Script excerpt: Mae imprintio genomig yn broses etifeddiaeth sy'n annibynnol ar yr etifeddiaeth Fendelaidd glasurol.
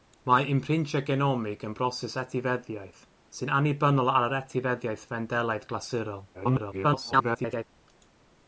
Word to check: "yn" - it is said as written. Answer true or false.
true